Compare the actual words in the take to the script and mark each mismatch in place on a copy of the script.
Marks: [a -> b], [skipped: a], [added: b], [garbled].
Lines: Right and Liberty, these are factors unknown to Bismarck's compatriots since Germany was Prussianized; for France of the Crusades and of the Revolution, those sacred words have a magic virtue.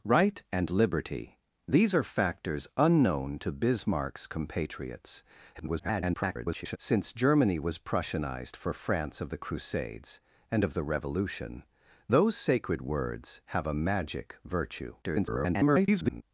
Right and Liberty, these are factors unknown to Bismarck's compatriots [garbled] since Germany was Prussianized; for France of the Crusades and of the Revolution, those sacred words have a magic virtue. [garbled]